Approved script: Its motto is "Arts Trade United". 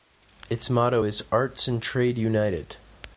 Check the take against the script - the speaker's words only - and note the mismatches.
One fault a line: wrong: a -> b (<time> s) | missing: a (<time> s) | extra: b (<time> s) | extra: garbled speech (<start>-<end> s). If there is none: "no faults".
extra: and (1.7 s)